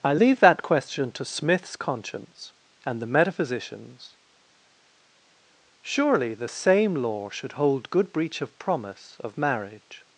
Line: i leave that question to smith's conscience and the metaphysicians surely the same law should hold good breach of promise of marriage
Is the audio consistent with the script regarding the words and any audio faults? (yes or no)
yes